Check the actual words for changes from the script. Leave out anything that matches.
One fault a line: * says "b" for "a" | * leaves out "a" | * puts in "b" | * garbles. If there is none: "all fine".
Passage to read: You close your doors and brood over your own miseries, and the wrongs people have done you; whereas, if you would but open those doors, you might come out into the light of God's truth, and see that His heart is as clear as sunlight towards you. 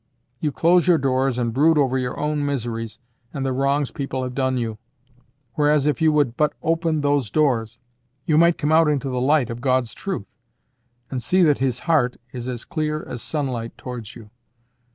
all fine